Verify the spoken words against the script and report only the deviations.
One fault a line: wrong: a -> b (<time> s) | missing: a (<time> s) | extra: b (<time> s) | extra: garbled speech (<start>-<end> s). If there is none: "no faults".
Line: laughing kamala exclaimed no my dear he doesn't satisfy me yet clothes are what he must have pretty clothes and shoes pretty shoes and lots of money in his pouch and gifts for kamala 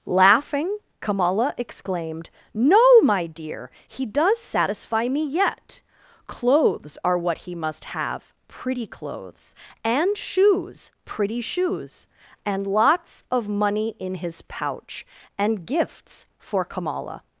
wrong: doesn't -> does (4.0 s)